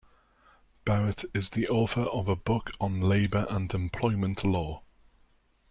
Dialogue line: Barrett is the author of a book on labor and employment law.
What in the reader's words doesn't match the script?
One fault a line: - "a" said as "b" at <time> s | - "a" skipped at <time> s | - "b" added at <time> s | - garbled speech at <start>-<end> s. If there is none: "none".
none